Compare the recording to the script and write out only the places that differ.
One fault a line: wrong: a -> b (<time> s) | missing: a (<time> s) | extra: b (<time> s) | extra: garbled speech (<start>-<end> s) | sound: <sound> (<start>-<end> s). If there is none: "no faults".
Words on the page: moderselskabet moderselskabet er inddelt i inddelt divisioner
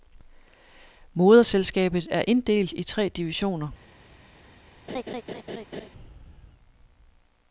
missing: moderselskabet (2.1 s)
wrong: inddelt -> tre (2.8 s)
sound: laugh (4.9-5.9 s)